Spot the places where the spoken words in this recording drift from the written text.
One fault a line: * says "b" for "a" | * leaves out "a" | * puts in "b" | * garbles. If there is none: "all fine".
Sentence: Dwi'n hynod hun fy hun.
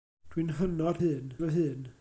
all fine